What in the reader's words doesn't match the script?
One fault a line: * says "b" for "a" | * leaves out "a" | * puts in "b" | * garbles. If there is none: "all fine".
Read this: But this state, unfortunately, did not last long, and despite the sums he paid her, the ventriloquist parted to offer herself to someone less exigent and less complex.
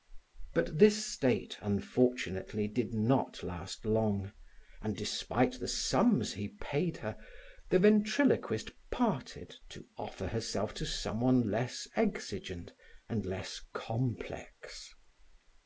all fine